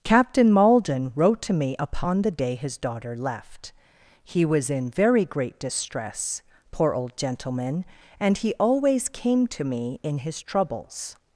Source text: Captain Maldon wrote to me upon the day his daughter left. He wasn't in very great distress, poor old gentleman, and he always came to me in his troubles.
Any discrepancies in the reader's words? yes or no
yes